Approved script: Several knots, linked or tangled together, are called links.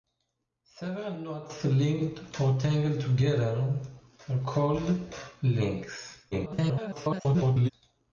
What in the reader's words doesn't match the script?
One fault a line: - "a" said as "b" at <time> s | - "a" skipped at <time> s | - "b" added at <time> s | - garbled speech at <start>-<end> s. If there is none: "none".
- garbled speech at 6.3-7.7 s